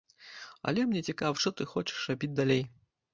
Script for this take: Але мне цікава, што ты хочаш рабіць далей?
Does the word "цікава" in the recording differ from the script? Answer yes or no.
no